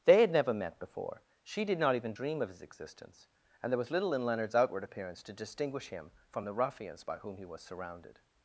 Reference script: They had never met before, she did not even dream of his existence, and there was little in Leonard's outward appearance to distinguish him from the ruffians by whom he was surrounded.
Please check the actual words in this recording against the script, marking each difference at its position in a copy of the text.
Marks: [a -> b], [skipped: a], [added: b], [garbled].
They had never met before, she did not even dream of his existence, and there was little in Leonard's outward appearance to distinguish him from the ruffians by whom he was surrounded.